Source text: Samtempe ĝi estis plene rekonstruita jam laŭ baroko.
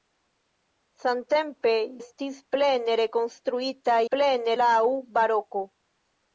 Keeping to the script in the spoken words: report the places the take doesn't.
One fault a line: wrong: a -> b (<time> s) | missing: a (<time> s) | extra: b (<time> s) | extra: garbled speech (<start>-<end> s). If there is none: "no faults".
missing: ĝi (1.7 s)
wrong: jam -> plene (4.1 s)